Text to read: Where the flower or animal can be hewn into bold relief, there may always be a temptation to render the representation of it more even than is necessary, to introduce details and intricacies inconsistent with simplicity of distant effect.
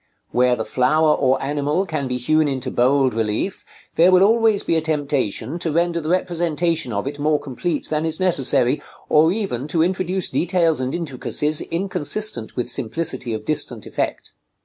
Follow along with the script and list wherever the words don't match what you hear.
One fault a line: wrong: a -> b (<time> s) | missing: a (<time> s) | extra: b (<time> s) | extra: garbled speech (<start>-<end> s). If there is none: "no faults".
wrong: may -> will (4.1 s)
wrong: even -> complete (7.4 s)
extra: or even (9.1 s)